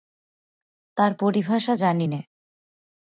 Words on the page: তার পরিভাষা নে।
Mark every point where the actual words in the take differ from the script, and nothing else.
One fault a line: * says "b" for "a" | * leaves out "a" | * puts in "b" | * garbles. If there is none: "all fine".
* puts in "জানি"